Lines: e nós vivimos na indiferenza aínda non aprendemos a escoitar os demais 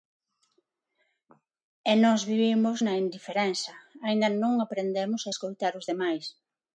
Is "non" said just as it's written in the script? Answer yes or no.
yes